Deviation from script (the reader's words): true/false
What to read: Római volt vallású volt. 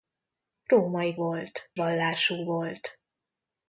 false